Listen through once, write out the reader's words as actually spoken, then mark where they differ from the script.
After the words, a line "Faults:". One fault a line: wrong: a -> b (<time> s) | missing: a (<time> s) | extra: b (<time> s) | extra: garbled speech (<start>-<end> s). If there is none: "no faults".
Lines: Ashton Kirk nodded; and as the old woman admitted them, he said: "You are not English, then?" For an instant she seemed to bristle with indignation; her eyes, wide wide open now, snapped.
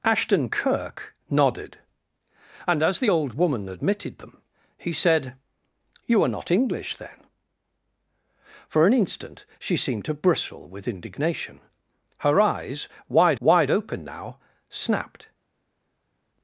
Ashton Kirk nodded; and as the old woman admitted them, he said: "You are not English, then?" For an instant she seemed to bristle with indignation; her eyes, wide wide open now, snapped.
Faults:
no faults